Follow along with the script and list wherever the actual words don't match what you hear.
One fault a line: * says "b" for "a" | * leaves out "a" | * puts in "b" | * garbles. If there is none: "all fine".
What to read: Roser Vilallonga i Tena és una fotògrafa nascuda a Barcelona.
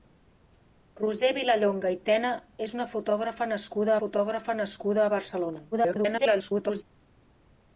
* puts in "fotògrafa nascuda"
* garbles